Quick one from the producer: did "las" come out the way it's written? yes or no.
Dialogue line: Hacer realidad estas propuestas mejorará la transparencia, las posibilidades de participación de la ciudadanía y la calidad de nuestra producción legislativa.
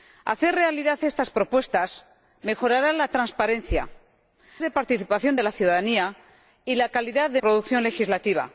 no